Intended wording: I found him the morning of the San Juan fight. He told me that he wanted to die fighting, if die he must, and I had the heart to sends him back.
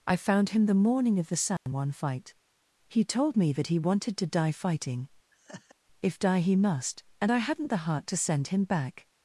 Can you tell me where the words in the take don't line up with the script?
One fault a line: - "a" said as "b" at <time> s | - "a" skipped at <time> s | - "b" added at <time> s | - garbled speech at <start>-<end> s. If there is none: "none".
- "had" said as "hadn't" at 7.4 s
- "sends" said as "send" at 8.2 s